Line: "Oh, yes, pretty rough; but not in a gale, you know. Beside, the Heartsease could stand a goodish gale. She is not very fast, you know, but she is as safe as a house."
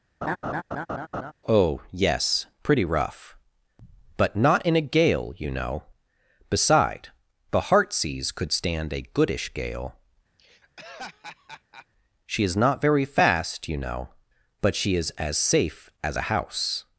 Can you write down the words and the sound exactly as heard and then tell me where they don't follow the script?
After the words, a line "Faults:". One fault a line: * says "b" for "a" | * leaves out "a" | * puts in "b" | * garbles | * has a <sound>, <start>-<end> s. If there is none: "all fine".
"Oh, yes, pretty rough; but not in a gale, you know. Beside, the Heartsease could stand a goodish gale. She is not very fast, you know, but she is as safe as a house."
Faults:
* has a laugh, 0.2-1.3 s
* has a laugh, 10.4-11.9 s